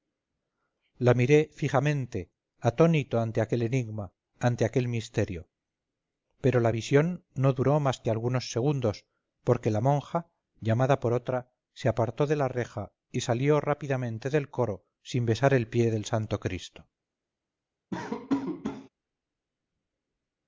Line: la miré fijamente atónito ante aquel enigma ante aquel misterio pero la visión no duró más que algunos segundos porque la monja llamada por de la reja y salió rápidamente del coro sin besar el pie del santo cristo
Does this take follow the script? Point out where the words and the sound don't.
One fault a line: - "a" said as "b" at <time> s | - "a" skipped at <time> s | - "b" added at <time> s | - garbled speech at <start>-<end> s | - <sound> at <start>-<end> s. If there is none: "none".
- "otra se apartó" added at 11.1 s
- laugh at 17.9-18.9 s